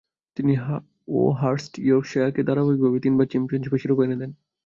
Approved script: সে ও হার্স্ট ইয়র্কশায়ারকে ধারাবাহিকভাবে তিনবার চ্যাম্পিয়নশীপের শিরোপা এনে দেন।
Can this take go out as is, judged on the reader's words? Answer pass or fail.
fail